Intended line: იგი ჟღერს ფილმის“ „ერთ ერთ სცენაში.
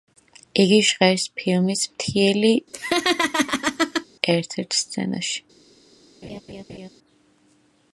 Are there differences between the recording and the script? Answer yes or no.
yes